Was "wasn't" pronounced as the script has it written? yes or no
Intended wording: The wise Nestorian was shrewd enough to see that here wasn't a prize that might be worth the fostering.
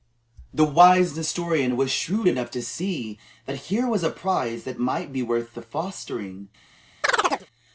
no